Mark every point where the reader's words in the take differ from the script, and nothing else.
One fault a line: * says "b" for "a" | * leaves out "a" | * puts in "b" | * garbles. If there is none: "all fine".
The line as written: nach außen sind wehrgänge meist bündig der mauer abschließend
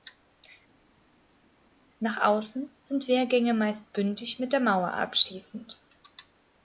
* puts in "mit"